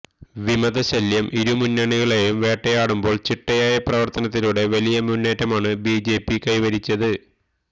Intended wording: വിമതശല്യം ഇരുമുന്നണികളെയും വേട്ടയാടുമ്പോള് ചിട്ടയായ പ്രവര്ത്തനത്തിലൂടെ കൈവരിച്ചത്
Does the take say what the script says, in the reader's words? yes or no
no